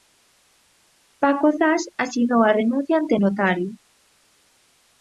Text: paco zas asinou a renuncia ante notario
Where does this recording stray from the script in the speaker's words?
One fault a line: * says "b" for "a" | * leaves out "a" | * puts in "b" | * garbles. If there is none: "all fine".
all fine